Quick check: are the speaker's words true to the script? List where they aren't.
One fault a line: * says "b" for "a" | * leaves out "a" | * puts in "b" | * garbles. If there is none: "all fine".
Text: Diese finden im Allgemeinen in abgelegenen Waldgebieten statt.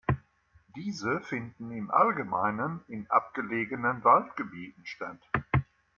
all fine